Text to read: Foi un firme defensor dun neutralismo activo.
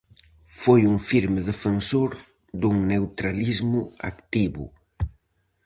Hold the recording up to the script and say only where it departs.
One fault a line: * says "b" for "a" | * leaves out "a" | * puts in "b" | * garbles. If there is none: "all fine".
all fine